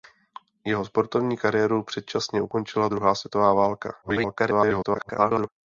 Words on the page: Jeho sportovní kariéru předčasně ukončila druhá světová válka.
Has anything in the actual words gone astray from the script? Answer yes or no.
yes